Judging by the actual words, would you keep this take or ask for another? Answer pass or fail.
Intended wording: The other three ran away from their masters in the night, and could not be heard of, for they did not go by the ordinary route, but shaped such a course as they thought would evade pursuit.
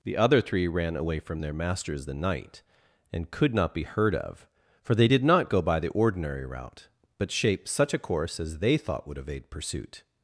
fail